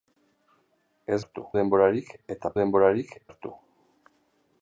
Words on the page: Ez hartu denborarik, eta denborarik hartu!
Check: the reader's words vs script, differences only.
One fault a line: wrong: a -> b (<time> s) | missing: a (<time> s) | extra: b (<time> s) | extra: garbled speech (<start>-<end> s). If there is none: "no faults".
no faults